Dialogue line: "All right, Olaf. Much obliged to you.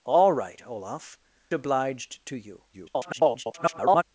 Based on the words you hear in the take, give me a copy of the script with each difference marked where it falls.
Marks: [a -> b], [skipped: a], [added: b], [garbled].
"All right, Olaf. [skipped: Much] obliged to you. [garbled]